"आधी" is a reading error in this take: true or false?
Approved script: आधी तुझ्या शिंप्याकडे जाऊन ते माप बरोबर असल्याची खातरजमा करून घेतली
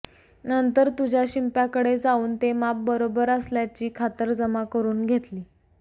true